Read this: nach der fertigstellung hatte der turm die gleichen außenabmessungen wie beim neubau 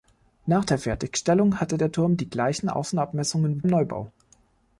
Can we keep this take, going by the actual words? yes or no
no